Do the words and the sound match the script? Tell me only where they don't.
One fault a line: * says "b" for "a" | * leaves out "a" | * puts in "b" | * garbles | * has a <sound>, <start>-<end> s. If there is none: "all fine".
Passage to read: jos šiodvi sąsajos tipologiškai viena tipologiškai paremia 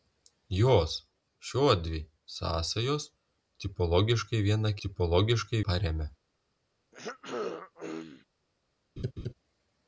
* has a throat clearing, 6.9-8.2 s
* has a laugh, 9.0-9.3 s